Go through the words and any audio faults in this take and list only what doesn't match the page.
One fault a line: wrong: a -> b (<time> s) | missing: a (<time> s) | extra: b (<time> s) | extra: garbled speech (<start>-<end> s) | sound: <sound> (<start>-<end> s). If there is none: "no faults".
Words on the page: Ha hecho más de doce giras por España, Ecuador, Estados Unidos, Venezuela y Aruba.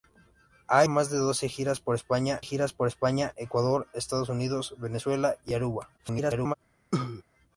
missing: hecho (0.8 s)
extra: giras por España (2.4 s)
extra: garbled speech (6.0-6.5 s)
sound: cough (6.9-7.2 s)